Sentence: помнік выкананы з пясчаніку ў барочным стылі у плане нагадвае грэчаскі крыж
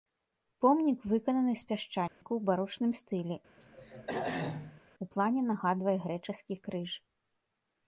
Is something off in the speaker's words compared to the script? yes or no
no